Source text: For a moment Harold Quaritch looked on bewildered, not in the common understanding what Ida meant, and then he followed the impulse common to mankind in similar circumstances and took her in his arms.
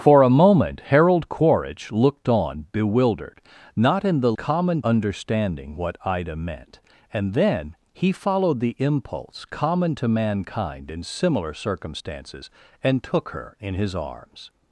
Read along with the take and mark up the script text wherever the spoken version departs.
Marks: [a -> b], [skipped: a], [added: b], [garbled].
For a moment Harold Quaritch looked on bewildered, not in the common understanding what Ida meant, and then he followed the impulse common to mankind in similar circumstances and took her in his arms.